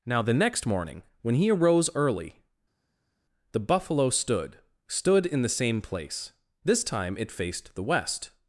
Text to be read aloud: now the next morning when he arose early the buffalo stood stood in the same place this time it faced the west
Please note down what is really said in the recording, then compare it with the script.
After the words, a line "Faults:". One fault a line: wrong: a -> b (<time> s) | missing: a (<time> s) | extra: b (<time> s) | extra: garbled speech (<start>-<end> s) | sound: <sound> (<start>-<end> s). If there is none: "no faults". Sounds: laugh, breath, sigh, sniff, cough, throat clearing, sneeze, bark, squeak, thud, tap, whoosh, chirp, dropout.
now the next morning when he arose early the buffalo stood stood in the same place this time it faced the west
Faults:
no faults